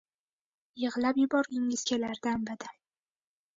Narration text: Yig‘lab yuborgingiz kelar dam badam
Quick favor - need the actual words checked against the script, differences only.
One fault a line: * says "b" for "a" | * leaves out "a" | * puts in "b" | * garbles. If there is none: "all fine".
all fine